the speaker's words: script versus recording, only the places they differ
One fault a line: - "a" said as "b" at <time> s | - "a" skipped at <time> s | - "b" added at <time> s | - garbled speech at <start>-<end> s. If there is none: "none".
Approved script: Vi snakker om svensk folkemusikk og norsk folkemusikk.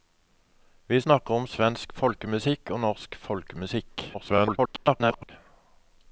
- garbled speech at 4.1-5.3 s